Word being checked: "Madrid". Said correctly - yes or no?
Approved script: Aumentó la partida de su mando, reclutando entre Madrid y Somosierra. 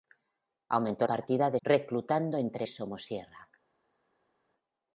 no